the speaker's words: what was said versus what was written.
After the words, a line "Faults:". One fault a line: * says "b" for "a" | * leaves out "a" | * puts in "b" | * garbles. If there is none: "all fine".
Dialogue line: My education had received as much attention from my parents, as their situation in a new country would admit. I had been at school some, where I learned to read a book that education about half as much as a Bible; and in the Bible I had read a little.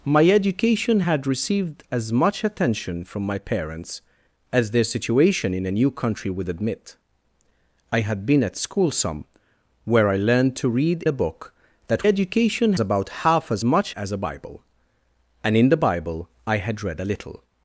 My education had received as much attention from my parents, as their situation in a new country would admit. I had been at school some, where I learned to read a book that education about half as much as a Bible; and in the Bible I had read a little.
Faults:
all fine